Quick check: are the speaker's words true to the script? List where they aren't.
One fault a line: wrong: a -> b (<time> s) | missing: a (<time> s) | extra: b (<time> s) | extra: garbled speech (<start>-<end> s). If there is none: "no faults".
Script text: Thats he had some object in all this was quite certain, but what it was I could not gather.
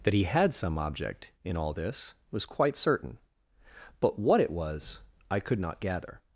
wrong: Thats -> That (0.0 s)